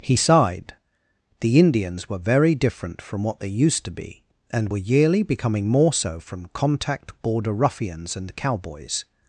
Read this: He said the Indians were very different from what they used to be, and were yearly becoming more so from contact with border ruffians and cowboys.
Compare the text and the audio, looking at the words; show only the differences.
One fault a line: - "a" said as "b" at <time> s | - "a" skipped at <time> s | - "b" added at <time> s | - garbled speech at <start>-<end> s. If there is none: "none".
- "said" said as "sighed" at 0.1 s
- "with" skipped at 7.2 s